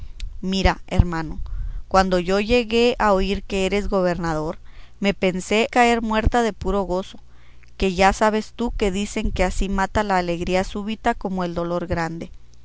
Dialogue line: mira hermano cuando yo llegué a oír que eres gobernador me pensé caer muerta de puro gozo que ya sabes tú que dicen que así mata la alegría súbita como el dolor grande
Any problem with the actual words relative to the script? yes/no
no